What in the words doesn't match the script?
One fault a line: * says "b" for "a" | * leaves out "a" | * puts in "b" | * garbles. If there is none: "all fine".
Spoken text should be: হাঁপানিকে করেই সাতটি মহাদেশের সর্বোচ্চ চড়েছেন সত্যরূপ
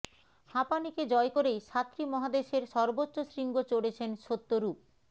* puts in "জয়"
* puts in "শৃঙ্গ"